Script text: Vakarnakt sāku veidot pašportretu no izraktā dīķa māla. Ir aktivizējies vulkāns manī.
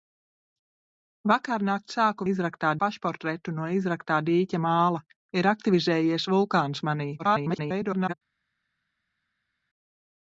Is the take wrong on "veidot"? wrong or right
wrong